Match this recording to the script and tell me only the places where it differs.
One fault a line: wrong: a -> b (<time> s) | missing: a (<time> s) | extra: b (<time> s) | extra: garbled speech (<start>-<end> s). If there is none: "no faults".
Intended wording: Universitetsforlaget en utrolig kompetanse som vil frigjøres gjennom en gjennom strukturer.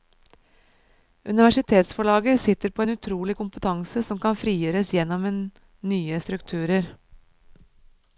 extra: sitter på (2.4 s)
wrong: vil -> kan (4.2 s)
wrong: gjennom -> nye (5.9 s)